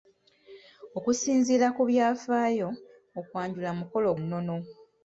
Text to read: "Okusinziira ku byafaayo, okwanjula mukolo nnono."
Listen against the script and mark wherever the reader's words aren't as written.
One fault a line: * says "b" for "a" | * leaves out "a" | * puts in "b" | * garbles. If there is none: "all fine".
all fine